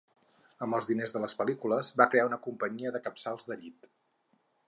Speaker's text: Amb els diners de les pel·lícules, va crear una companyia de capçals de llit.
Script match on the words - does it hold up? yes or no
yes